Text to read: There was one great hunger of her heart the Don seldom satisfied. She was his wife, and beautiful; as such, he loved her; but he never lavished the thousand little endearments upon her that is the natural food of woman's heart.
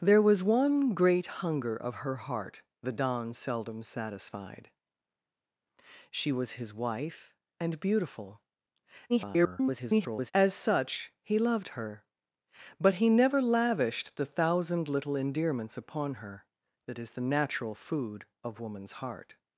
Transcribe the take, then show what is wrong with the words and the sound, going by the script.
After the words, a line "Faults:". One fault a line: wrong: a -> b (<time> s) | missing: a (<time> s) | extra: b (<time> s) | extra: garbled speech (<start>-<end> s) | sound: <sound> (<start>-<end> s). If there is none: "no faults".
There was one great hunger of her heart the Don seldom satisfied. She was his wife, and beautiful; [garbled] as such, he loved her; but he never lavished the thousand little endearments upon her that is the natural food of woman's heart.
Faults:
extra: garbled speech (9.1-10.3 s)